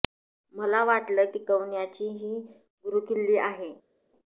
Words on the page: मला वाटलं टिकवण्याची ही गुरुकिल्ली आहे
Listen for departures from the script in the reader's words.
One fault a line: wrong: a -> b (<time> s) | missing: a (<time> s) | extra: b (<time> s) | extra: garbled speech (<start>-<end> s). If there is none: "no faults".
no faults